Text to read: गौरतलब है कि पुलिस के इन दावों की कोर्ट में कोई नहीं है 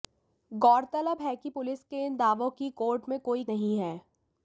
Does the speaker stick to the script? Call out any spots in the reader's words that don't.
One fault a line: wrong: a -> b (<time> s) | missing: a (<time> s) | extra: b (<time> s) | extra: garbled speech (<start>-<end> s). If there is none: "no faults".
no faults